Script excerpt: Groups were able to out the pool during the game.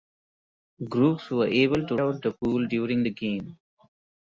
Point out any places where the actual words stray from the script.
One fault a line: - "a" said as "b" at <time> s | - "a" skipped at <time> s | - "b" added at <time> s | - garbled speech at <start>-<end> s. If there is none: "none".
none